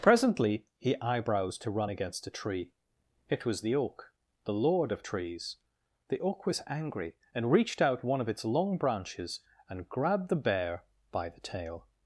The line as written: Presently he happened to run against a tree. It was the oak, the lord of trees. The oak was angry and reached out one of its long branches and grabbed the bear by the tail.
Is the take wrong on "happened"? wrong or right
wrong